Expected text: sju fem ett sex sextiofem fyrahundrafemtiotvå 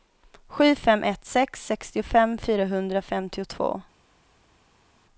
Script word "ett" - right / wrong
right